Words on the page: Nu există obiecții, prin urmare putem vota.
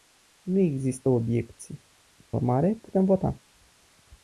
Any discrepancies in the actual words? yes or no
yes